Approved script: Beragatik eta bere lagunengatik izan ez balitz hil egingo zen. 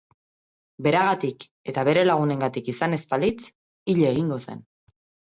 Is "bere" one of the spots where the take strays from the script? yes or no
no